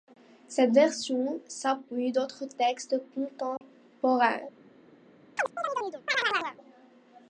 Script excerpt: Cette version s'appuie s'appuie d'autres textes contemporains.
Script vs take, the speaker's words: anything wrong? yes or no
yes